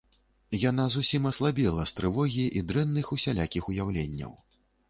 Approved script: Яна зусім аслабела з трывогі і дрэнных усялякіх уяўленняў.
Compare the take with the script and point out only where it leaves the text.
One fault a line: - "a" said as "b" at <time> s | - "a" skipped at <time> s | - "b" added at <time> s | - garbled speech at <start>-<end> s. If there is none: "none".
none